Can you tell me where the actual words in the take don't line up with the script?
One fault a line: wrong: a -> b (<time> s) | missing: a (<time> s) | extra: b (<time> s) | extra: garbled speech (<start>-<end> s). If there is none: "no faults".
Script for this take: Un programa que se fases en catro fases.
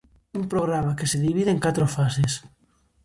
wrong: fases -> divide (1.2 s)